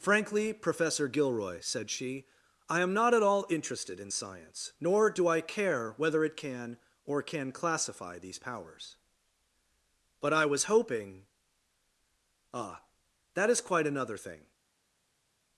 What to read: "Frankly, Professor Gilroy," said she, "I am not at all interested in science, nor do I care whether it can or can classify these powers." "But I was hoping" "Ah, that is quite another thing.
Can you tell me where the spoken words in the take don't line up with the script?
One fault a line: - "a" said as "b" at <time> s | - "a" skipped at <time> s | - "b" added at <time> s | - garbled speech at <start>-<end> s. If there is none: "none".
none